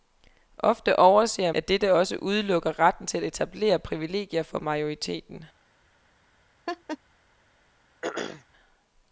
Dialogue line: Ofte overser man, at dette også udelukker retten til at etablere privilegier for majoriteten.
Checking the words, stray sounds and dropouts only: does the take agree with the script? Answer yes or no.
no